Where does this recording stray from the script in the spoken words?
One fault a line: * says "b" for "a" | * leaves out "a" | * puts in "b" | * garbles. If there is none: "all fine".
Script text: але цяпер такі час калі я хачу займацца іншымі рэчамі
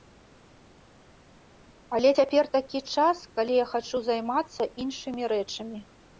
all fine